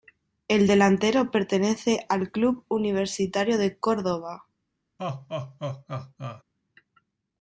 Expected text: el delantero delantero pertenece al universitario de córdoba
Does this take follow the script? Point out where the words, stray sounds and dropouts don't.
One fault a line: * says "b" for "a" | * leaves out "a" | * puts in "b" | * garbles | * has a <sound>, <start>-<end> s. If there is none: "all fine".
* leaves out "delantero"
* puts in "club"
* has a laugh, 5.0-6.4 s